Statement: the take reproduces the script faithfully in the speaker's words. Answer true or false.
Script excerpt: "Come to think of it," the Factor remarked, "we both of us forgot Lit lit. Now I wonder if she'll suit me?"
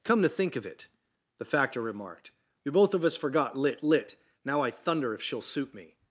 false